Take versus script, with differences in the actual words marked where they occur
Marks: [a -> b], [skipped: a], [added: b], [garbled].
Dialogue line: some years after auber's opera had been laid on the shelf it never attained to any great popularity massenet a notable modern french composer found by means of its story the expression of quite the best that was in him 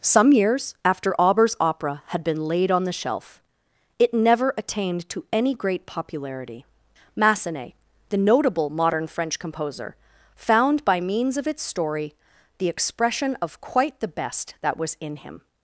some years after auber's opera had been laid on the shelf it never attained to any great popularity massenet [a -> the] notable modern french composer found by means of its story the expression of quite the best that was in him